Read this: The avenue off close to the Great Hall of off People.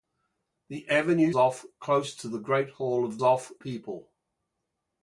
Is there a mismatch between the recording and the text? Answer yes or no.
no